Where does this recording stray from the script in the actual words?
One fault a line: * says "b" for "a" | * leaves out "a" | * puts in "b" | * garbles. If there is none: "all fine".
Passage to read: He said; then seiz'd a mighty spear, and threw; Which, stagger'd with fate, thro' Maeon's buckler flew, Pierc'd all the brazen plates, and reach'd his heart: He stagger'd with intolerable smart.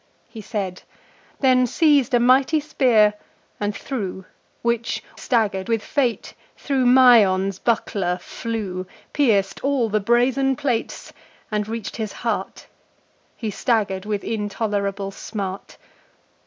all fine